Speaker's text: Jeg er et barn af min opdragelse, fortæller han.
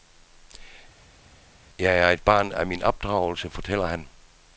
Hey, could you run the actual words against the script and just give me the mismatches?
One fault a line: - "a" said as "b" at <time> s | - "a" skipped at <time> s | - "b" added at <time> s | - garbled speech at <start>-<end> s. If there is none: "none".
none